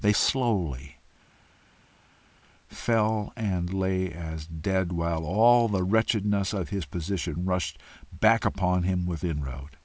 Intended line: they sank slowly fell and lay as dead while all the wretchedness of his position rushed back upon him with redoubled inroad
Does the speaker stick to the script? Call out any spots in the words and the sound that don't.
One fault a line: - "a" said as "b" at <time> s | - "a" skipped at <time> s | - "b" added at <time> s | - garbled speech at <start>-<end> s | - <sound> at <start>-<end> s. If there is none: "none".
- "sank" skipped at 0.1 s
- "redoubled" skipped at 9.3 s